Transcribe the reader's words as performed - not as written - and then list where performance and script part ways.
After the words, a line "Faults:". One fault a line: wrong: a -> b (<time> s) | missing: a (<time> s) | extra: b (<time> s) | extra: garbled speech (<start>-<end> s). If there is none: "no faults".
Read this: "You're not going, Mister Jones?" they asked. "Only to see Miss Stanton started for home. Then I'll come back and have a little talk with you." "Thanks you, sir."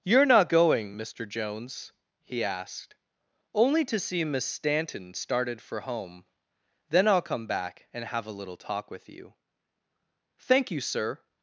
"You're not going, Mister Jones?" he asked. "Only to see Miss Stanton started for home. Then I'll come back and have a little talk with you." "Thank you, sir."
Faults:
wrong: they -> he (2.2 s)
wrong: Thanks -> Thank (10.4 s)